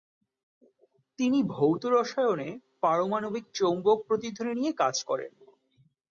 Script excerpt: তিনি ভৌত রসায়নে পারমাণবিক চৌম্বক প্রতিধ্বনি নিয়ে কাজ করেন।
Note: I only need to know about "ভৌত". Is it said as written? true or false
true